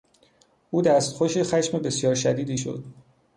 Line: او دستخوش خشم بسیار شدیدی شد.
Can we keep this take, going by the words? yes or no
yes